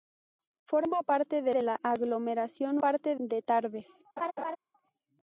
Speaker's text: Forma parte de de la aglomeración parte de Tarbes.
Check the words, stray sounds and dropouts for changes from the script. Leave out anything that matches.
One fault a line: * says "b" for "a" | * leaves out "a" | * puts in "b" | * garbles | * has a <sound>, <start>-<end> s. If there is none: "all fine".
* has a laugh, 4.2-4.6 s